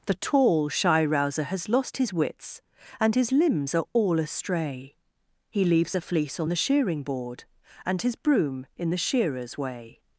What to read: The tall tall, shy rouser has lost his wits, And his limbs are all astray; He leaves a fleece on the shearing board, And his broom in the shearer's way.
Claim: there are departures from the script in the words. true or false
true